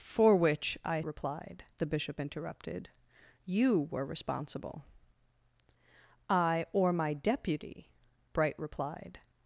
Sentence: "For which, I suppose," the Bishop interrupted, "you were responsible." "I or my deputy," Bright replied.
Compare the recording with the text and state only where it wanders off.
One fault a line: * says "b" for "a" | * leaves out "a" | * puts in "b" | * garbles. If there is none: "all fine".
* says "replied" for "suppose"